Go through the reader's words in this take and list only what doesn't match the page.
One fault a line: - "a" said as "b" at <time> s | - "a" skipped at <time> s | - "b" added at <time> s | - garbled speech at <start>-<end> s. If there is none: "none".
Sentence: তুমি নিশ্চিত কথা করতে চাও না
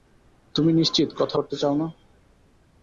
none